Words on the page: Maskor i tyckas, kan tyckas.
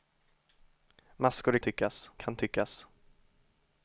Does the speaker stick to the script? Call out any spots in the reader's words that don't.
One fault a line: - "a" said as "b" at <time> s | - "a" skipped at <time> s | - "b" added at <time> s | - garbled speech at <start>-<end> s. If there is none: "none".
none